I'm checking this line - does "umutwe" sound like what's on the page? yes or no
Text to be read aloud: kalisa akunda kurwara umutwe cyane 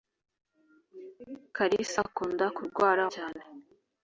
no